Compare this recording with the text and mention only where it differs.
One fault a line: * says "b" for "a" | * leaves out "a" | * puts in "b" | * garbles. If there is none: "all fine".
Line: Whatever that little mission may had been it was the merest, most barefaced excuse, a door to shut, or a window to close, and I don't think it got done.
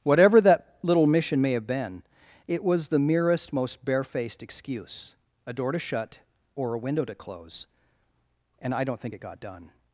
* says "have" for "had"